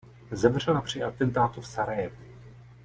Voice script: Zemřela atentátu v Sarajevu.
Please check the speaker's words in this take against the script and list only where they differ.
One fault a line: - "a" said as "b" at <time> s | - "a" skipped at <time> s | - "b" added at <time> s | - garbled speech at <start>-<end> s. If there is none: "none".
- "při" added at 0.8 s